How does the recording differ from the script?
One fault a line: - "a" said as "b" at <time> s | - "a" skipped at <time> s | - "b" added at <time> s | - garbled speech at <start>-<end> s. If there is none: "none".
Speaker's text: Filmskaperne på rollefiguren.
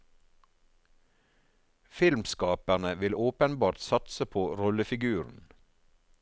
- "vil åpenbart satse" added at 3.0 s